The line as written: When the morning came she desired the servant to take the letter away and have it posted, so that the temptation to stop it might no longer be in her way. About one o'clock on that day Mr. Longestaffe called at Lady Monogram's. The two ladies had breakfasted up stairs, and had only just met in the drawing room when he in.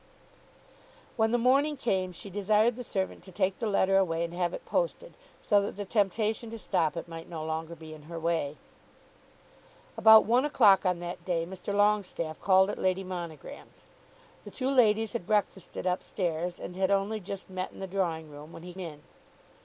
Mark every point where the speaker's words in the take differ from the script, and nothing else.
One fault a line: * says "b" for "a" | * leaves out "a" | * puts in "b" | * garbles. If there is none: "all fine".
all fine